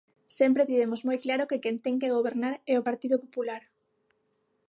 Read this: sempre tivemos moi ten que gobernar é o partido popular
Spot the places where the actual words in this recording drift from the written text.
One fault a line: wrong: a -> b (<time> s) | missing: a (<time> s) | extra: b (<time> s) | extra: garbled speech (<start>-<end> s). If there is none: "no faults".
extra: claro que quen (1.2 s)